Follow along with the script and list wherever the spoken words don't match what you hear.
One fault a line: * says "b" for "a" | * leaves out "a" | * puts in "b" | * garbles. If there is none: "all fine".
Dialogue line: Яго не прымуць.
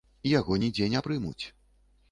* puts in "нідзе"